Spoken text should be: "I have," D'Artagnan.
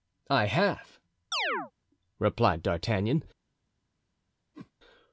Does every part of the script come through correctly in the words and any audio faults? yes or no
no